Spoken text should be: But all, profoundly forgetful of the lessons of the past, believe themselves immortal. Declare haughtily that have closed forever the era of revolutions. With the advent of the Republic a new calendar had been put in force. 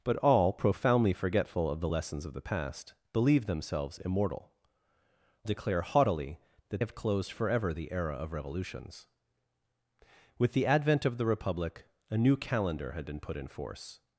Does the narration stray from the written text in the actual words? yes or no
no